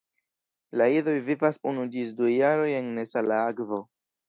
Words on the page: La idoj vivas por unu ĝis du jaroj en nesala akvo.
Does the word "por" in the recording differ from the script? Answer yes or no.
yes